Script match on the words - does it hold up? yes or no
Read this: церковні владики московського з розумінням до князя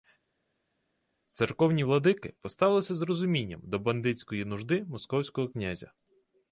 no